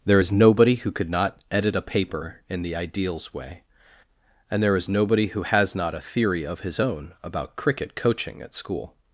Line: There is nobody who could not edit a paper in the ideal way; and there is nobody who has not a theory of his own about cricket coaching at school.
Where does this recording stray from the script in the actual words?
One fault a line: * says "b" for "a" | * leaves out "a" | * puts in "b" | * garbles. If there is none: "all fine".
* says "ideals" for "ideal"